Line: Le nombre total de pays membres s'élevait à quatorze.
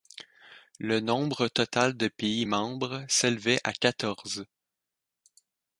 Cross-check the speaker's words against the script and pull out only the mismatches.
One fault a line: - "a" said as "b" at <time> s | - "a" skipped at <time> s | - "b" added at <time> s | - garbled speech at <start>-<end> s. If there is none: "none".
none